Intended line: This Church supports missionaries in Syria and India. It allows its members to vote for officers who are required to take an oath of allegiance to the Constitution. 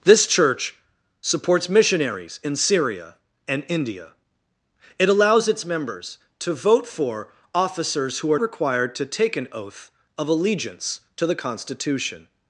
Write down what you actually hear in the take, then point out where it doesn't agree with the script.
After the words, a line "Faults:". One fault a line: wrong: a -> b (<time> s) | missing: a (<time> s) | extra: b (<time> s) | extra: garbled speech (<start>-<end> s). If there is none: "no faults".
This Church supports missionaries in Syria and India. It allows its members to vote for officers who are required to take an oath of allegiance to the Constitution.
Faults:
no faults